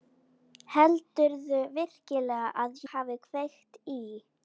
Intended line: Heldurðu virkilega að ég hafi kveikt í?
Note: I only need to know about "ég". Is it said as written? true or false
false